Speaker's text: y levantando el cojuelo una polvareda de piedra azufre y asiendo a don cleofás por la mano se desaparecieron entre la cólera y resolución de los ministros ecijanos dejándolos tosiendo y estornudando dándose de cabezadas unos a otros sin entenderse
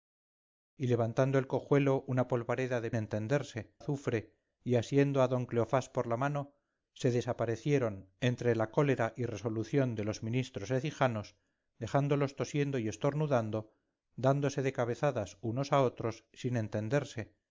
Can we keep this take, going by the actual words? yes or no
no